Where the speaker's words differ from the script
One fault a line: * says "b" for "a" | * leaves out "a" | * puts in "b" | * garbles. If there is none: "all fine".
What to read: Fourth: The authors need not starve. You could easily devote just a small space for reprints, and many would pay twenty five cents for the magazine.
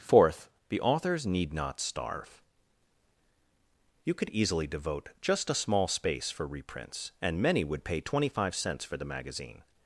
all fine